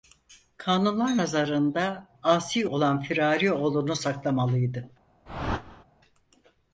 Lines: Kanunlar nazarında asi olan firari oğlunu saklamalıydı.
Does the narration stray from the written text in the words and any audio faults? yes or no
yes